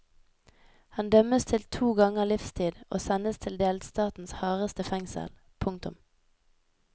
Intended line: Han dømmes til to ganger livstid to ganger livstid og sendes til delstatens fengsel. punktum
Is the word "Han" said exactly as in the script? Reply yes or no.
yes